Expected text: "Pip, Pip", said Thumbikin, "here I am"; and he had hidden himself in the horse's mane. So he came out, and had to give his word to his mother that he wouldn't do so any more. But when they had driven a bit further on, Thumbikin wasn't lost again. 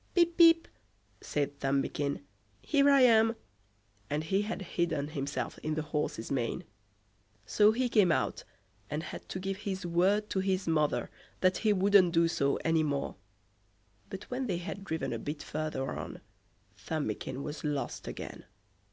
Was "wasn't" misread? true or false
true